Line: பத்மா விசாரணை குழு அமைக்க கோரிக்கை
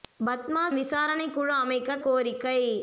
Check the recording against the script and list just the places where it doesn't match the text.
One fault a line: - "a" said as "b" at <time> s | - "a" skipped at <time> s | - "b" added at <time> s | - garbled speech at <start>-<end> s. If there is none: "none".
none